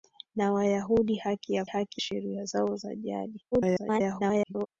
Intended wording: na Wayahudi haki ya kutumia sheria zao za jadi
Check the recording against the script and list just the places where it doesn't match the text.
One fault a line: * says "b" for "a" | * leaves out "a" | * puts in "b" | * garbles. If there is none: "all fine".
* says "haki" for "kutumia"
* garbles